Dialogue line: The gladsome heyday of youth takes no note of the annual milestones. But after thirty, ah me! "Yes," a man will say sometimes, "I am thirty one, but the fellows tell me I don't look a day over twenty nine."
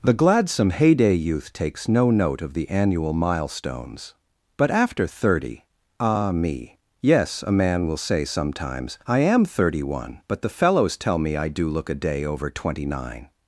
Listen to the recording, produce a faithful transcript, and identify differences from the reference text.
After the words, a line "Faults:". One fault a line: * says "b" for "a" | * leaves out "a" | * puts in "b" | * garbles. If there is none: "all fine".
The gladsome heyday youth takes no note of the annual milestones. But after thirty, ah me! "Yes," a man will say sometimes, "I am thirty one, but the fellows tell me I do look a day over twenty nine."
Faults:
* leaves out "of"
* says "do" for "don't"